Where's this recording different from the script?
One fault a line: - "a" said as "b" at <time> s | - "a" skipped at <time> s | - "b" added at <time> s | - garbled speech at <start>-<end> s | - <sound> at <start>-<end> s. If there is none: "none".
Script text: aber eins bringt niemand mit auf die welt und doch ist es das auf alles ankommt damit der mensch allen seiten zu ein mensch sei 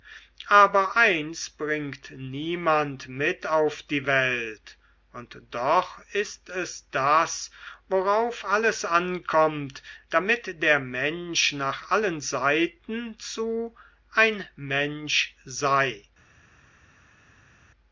- "auf" said as "worauf" at 7.9 s
- "nach" added at 11.5 s